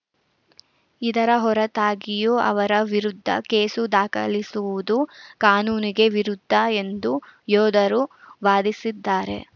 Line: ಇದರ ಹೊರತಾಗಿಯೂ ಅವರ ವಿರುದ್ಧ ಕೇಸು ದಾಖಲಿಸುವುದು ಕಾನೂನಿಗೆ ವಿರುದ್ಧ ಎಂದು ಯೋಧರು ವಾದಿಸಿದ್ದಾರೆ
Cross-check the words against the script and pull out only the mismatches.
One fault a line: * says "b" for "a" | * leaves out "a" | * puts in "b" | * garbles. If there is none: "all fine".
all fine